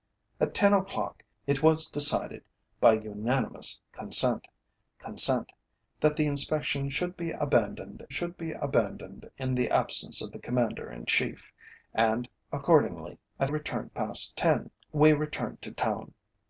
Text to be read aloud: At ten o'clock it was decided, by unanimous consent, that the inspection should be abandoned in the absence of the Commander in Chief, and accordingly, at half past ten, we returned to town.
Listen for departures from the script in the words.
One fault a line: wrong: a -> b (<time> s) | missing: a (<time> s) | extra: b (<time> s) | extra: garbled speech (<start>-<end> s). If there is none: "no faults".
extra: consent (5.0 s)
extra: should be abandoned (8.1 s)
wrong: half -> returned (13.4 s)